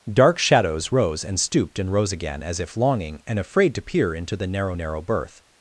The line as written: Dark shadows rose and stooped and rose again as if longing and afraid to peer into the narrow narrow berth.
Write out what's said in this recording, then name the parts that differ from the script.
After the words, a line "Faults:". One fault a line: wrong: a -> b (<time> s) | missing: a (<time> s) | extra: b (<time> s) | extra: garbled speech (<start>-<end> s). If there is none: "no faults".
Dark shadows rose and stooped and rose again as if longing and afraid to peer into the narrow narrow berth.
Faults:
no faults